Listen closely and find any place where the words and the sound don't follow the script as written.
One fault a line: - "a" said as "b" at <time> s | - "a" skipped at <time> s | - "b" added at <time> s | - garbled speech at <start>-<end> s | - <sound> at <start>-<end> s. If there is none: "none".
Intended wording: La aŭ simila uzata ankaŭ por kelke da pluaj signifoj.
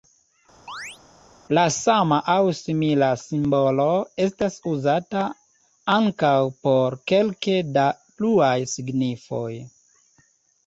- chirp at 0.7-1.0 s
- "sama" added at 1.7 s
- "simbolo estas" added at 3.2 s